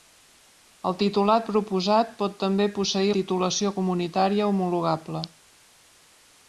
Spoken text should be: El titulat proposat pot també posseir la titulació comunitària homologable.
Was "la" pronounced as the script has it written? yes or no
no